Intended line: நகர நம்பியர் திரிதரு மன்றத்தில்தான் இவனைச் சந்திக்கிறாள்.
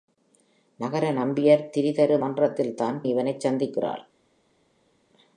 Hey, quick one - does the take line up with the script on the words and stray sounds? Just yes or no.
yes